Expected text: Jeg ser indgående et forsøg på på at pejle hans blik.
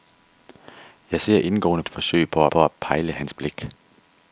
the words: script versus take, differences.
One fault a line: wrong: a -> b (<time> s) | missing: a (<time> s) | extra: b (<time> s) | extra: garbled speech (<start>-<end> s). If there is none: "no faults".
no faults